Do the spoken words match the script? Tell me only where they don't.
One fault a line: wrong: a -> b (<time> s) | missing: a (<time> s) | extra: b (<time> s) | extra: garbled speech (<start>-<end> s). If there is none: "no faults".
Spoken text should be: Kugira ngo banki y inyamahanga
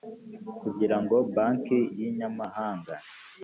no faults